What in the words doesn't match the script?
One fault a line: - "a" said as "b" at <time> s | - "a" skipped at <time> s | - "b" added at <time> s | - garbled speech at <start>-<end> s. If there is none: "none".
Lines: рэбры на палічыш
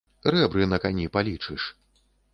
- "кані" added at 0.8 s